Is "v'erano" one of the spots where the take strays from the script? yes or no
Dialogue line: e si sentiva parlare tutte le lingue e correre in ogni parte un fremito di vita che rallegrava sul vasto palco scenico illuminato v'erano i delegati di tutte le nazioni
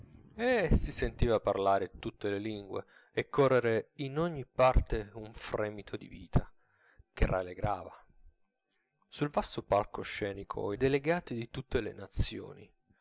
yes